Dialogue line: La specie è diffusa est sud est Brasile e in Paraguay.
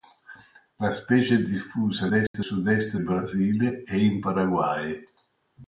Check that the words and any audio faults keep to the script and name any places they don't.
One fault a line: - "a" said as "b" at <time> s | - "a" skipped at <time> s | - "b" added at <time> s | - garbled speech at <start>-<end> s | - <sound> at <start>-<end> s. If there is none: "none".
- dropout at 2.3-2.3 s